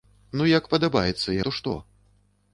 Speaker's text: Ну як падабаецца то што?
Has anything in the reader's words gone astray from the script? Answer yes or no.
no